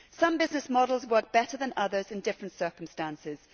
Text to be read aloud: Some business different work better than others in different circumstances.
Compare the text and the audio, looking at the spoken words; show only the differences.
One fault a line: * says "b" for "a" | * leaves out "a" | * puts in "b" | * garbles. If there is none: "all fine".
* says "models" for "different"